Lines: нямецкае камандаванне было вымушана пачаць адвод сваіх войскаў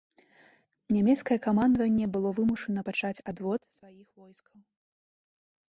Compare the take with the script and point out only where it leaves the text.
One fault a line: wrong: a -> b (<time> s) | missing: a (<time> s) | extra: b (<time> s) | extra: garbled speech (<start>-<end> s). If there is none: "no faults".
no faults